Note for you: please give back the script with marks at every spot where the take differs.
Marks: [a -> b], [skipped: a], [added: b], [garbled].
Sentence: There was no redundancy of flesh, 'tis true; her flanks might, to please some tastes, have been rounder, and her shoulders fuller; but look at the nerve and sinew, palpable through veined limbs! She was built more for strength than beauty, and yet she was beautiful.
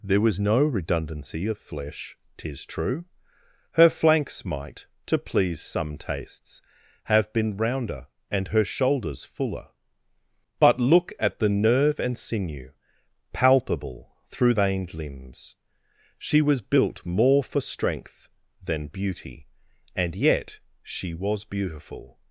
There was no redundancy of flesh, 'tis true; her flanks might, to please some tastes, have been rounder, and her shoulders fuller; but look at the nerve and sinew, palpable through veined limbs! She was built more for strength than beauty, and yet she was beautiful.